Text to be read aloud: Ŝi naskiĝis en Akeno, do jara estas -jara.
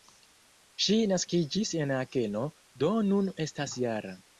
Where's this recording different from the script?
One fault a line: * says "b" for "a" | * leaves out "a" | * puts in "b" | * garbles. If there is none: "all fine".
* says "nun" for "jara"